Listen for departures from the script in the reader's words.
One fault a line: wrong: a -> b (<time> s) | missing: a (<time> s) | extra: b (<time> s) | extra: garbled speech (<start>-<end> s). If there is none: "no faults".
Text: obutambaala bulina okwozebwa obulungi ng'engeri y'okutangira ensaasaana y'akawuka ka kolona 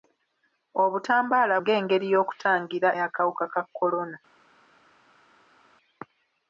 missing: bulina okwozebwa obulungi (1.6 s)
missing: ensaasaana (2.9 s)